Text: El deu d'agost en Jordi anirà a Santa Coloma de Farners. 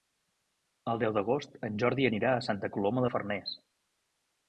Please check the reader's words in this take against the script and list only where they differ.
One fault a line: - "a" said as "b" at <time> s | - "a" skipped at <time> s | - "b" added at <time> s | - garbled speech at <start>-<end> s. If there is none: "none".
none